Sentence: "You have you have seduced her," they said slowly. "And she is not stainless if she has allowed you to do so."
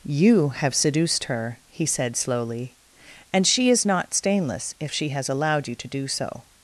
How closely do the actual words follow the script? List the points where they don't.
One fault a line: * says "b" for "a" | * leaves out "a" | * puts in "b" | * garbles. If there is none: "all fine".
* leaves out "you have"
* says "he" for "they"